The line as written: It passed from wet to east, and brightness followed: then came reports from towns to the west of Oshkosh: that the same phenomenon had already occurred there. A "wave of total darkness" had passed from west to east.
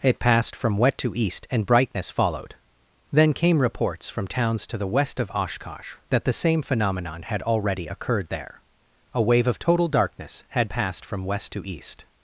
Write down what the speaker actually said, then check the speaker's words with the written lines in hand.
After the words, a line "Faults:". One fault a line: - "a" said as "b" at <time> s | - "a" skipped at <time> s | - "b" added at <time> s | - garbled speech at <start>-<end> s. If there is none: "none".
It passed from wet to east, and brightness followed: then came reports from towns to the west of Oshkosh: that the same phenomenon had already occurred there. A "wave of total darkness" had passed from west to east.
Faults:
none